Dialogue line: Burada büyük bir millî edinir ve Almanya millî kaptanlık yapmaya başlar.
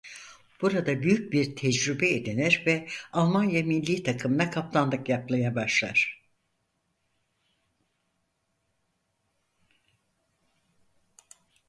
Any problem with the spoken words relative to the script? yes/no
yes